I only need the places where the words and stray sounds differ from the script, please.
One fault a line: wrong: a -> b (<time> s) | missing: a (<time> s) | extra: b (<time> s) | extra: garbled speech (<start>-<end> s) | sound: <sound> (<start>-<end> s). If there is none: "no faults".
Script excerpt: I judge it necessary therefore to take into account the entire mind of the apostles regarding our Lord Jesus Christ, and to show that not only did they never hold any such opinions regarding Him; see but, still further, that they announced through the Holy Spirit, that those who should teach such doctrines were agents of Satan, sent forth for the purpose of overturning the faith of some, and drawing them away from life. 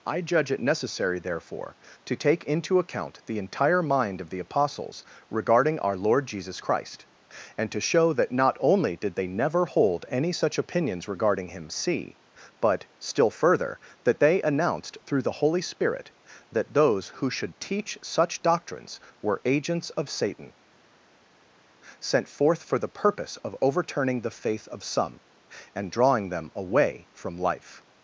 no faults